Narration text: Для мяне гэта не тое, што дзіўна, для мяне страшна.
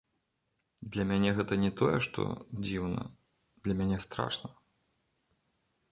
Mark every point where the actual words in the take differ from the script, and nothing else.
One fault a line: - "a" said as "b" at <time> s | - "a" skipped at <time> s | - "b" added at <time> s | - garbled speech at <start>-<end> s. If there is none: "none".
none